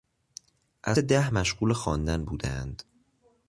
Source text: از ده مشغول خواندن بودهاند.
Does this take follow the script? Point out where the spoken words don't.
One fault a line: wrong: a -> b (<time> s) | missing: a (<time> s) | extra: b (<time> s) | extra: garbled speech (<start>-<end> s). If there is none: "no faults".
no faults